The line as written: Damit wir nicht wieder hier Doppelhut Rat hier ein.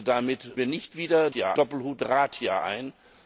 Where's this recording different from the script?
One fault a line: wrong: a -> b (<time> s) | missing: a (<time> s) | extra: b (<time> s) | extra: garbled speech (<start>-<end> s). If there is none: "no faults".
no faults